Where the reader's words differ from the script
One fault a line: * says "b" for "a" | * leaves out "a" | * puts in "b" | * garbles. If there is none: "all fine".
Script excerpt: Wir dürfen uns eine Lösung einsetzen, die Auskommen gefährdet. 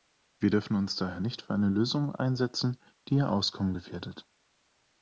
* puts in "daher nicht für"
* puts in "ihr"